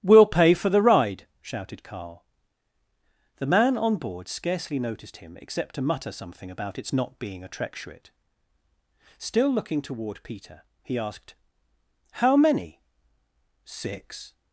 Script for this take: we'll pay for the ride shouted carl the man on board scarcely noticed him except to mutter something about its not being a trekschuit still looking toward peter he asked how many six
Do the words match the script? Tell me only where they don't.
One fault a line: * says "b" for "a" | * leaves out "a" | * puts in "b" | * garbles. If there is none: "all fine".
all fine